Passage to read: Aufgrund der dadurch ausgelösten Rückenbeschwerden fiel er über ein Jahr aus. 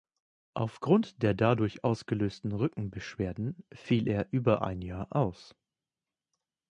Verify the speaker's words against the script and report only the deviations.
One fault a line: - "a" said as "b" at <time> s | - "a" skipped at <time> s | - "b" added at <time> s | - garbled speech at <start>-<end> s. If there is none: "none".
none